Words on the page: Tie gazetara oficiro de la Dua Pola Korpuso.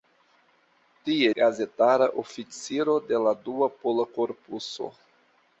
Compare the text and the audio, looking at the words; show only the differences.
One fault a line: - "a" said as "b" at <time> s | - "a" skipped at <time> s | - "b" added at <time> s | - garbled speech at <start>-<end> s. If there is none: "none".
none